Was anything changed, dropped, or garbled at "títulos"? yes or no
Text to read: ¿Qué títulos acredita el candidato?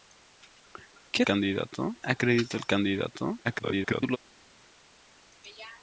yes